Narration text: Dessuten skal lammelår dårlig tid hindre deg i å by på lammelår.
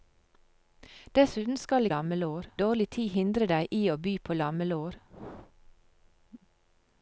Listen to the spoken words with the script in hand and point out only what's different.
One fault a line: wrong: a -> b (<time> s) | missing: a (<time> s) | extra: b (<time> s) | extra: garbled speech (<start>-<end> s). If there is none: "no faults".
no faults